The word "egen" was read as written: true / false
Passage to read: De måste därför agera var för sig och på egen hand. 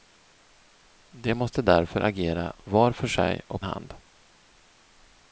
false